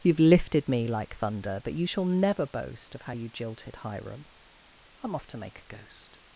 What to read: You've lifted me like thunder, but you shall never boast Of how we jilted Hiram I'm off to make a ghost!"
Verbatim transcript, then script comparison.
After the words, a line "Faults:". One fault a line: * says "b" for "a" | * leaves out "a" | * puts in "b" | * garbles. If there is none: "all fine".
You've lifted me like thunder, but you shall never boast Of how you jilted Hiram I'm off to make a ghost!"
Faults:
* says "you" for "we"